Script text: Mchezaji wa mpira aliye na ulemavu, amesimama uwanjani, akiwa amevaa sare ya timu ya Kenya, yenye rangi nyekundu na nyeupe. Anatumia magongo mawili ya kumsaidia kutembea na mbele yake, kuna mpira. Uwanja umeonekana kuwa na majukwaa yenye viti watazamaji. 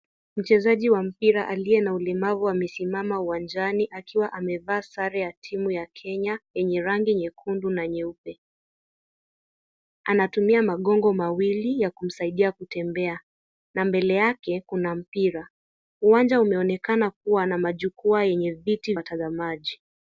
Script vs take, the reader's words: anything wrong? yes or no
no